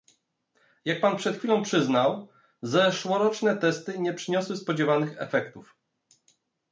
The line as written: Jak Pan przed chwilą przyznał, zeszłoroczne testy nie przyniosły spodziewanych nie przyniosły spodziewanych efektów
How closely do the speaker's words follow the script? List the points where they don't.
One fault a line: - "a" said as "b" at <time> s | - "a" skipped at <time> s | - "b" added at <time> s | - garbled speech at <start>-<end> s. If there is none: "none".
- "nie przyniosły spodziewanych" skipped at 5.2 s